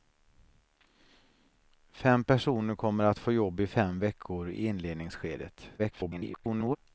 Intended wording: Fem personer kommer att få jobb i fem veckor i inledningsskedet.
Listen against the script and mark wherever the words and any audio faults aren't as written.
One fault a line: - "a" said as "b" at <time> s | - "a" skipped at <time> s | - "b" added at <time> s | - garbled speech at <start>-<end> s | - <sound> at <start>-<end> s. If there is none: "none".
- garbled speech at 5.8-6.8 s